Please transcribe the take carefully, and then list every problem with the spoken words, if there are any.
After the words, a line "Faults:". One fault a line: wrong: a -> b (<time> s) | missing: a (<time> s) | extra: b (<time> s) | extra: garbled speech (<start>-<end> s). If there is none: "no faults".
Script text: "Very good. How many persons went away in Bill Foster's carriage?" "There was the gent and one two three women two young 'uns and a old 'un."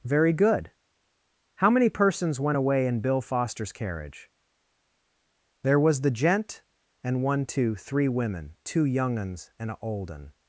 "Very good. How many persons went away in Bill Foster's carriage?" "There was the gent and one two three women two young 'uns and a old 'un."
Faults:
no faults